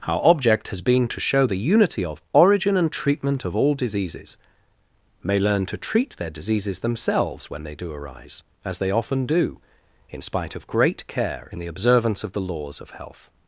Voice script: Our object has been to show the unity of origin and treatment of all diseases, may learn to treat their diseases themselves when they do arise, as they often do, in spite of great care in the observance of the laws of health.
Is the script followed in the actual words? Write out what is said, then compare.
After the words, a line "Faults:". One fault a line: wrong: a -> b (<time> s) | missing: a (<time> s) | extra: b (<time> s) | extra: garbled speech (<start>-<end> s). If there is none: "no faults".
Our object has been to show the unity of origin and treatment of all diseases, may learn to treat their diseases themselves when they do arise, as they often do, in spite of great care in the observance of the laws of health.
Faults:
no faults